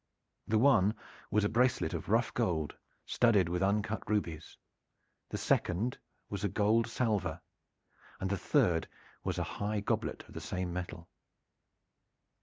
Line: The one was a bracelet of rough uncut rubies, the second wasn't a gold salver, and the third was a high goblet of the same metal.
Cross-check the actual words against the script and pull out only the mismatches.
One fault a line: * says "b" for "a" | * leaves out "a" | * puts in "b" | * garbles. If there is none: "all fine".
* puts in "gold studded with"
* says "was" for "wasn't"